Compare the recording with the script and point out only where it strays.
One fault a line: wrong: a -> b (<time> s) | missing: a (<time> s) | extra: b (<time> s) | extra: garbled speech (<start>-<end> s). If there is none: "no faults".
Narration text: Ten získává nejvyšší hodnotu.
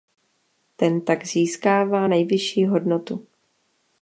extra: tak (1.0 s)